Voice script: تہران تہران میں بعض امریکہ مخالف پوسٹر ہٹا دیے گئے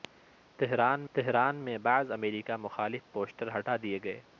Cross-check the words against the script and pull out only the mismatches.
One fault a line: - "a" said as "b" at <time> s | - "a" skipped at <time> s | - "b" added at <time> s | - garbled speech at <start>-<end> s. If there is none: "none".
none